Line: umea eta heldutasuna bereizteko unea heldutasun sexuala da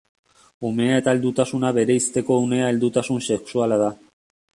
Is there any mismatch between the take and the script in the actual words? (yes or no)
no